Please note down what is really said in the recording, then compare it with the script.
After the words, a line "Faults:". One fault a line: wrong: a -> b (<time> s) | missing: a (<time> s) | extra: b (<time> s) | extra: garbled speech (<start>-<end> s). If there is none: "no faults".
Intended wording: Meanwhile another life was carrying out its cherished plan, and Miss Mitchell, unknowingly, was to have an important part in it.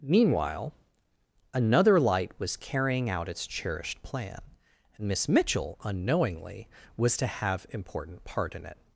Meanwhile another light was carrying out its cherished plan, and Miss Mitchell, unknowingly, was to have important part in it.
Faults:
wrong: life -> light (2.0 s)
missing: an (7.7 s)